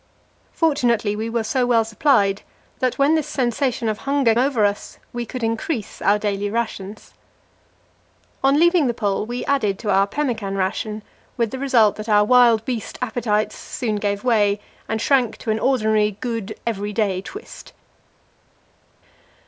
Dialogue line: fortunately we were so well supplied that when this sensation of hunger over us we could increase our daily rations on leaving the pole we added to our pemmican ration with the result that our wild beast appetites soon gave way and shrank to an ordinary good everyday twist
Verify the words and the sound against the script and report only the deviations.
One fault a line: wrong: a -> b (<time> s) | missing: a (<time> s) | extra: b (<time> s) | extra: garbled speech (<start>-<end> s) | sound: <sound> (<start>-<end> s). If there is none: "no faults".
no faults